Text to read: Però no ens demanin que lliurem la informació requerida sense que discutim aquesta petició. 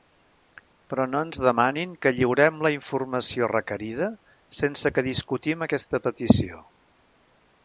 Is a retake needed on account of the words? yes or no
no